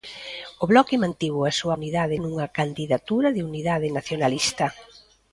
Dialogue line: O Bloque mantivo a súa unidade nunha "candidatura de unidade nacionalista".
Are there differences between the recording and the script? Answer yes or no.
no